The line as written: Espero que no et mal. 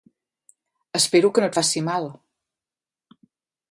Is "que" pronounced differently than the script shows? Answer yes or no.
no